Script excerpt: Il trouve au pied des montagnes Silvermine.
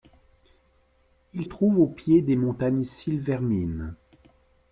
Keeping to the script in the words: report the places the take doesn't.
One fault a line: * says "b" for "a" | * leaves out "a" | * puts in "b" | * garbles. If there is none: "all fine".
all fine